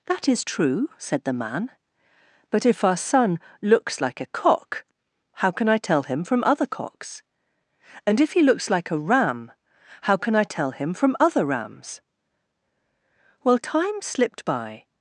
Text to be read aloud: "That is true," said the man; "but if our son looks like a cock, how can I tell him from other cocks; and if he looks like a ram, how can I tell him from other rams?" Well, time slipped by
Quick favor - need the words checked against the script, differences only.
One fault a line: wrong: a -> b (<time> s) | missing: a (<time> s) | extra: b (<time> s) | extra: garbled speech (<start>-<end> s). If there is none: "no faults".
no faults